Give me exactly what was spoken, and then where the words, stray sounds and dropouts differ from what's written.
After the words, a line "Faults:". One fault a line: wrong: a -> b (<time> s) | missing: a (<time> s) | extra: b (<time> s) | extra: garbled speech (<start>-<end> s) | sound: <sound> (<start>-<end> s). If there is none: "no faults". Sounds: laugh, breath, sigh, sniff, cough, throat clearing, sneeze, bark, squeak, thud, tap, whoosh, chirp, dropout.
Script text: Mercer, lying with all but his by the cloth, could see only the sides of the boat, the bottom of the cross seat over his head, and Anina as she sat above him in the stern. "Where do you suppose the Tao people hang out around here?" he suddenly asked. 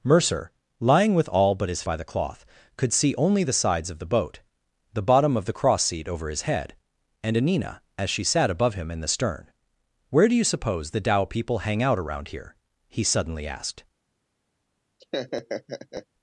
Mercer, lying with all but his by the cloth, could see only the sides of the boat, the bottom of the cross seat over his head, and Anina as she sat above him in the stern. "Where do you suppose the Tao people hang out around here?" he suddenly asked.
Faults:
sound: laugh (15.0-16.1 s)